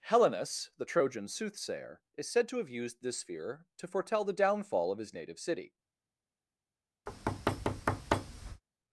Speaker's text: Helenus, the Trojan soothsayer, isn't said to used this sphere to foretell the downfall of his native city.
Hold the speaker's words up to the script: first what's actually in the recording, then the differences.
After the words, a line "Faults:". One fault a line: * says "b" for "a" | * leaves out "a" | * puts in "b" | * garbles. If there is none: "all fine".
Helenus, the Trojan soothsayer, is said to have used this sphere to foretell the downfall of his native city.
Faults:
* says "is" for "isn't"
* puts in "have"